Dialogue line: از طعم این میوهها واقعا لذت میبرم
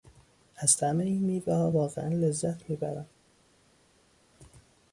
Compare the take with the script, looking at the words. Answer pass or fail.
pass